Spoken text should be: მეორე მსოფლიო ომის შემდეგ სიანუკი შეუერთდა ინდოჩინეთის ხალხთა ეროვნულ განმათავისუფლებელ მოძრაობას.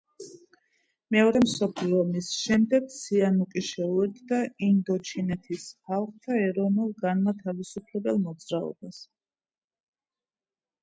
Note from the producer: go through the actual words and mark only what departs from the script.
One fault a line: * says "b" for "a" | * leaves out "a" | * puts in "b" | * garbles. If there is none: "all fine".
all fine